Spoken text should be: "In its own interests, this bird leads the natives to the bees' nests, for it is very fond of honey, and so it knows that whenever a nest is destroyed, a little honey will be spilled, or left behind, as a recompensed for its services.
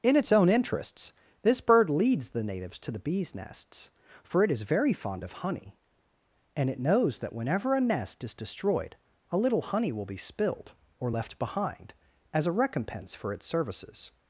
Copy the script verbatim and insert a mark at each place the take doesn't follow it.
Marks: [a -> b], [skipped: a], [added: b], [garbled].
"In its own interests, this bird leads the natives to the bees' nests, for it is very fond of honey, and [skipped: so] it knows that whenever a nest is destroyed, a little honey will be spilled, or left behind, as a [recompensed -> recompense] for its services.